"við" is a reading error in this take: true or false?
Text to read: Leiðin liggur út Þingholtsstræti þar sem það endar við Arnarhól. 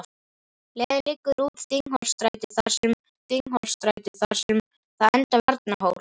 true